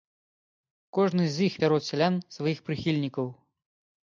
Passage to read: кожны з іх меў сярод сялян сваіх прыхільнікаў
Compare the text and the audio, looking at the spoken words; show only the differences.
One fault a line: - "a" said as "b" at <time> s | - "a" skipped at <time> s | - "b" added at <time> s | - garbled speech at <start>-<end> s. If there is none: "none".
- "меў" skipped at 1.6 s